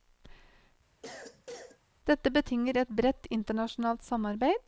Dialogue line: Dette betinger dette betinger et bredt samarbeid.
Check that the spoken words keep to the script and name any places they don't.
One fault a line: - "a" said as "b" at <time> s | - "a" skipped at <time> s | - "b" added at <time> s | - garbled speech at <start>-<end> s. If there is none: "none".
- "dette betinger" skipped at 2.8 s
- "internasjonalt" added at 3.3 s